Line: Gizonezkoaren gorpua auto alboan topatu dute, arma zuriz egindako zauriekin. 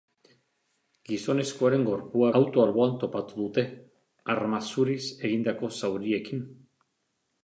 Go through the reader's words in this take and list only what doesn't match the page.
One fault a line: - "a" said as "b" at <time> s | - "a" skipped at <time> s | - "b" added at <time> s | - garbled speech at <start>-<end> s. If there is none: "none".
none